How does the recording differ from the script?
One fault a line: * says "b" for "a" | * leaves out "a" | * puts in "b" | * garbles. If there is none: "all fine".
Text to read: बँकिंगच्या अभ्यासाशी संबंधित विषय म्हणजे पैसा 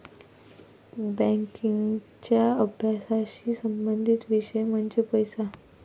all fine